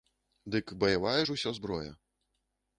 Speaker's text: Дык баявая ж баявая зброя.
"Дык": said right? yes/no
yes